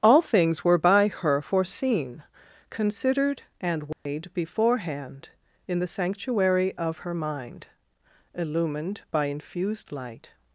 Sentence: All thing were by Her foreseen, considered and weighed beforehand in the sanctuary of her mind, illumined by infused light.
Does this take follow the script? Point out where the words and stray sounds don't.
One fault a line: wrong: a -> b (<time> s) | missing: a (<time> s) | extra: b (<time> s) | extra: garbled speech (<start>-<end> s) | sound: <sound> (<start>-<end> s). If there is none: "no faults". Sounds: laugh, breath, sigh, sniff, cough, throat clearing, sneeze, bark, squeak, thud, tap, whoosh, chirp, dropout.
wrong: thing -> things (0.2 s)
sound: dropout (3.9-4.1 s)